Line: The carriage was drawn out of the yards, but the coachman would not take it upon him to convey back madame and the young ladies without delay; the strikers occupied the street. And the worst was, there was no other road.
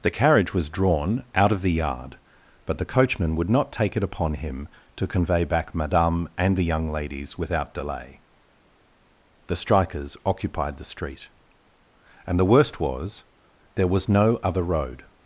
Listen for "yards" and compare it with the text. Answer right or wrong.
wrong